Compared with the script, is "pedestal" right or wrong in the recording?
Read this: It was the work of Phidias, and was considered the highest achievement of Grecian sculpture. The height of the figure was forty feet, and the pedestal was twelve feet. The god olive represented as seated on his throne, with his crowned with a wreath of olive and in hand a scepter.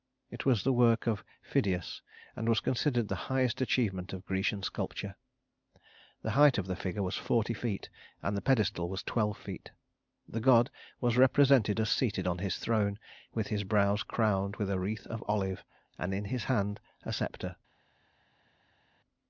right